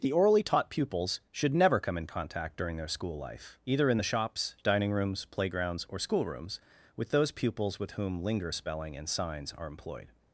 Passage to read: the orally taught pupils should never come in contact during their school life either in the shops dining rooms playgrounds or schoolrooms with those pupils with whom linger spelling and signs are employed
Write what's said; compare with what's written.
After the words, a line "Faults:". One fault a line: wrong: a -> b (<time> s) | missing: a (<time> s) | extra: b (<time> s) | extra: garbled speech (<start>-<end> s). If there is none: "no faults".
the orally taught pupils should never come in contact during their school life either in the shops dining rooms playgrounds or schoolrooms with those pupils with whom linger spelling and signs are employed
Faults:
no faults